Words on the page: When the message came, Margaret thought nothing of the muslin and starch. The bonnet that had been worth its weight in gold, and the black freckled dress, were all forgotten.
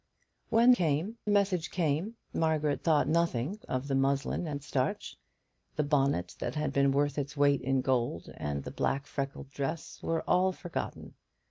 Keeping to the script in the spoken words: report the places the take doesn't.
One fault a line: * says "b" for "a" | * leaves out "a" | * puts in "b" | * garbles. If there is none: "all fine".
* says "came" for "the"